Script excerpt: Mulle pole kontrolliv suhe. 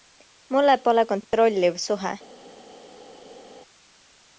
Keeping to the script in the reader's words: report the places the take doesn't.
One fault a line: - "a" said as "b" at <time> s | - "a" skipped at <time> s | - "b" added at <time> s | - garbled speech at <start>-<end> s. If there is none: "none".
none